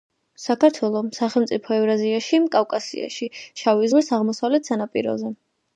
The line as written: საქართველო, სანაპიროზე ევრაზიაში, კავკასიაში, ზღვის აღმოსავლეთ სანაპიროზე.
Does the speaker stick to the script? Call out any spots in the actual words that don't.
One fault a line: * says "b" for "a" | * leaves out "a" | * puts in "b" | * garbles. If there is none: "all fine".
* says "სახელმწიფო" for "სანაპიროზე"
* puts in "შავი"